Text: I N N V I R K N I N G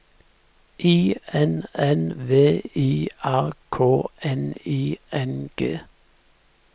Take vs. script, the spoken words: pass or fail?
pass